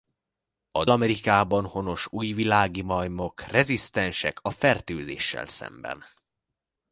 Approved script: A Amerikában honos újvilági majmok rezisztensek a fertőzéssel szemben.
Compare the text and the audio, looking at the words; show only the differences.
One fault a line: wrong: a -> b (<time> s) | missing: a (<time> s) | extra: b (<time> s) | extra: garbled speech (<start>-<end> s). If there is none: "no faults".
no faults